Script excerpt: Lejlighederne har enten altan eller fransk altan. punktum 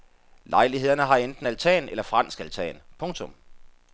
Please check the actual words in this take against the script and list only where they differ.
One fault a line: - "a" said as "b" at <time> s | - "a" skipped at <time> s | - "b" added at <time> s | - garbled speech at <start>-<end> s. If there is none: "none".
none